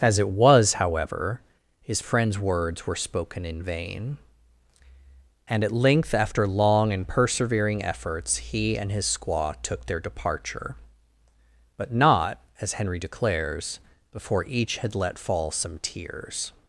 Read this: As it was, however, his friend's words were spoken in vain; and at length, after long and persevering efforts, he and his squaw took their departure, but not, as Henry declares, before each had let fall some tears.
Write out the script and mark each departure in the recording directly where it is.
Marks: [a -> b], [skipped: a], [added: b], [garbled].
As it was, however, his friend's words were spoken in vain; and at length, after long and persevering efforts, he and his squaw took their departure, but not, as Henry declares, before each had let fall some tears.